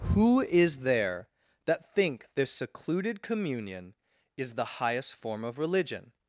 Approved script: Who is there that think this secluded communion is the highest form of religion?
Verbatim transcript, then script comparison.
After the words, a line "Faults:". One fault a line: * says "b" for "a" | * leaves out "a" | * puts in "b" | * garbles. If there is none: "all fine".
Who is there that think this secluded communion is the highest form of religion?
Faults:
all fine